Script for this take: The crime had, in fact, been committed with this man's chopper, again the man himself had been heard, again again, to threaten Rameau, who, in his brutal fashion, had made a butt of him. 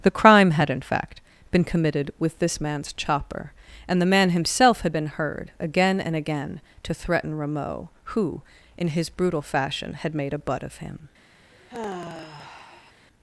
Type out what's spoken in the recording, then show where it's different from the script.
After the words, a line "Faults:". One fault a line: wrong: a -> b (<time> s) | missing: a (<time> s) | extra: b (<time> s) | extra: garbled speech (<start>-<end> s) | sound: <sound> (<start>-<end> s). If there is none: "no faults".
The crime had, in fact, been committed with this man's chopper, and the man himself had been heard, again and again, to threaten Rameau, who, in his brutal fashion, had made a butt of him.
Faults:
wrong: again -> and (3.9 s)
extra: and (6.0 s)
sound: sigh (11.5-12.9 s)